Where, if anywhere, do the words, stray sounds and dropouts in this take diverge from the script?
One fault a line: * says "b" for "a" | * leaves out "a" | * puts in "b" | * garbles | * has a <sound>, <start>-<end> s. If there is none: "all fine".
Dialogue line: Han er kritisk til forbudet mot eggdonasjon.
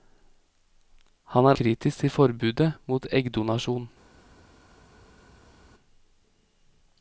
all fine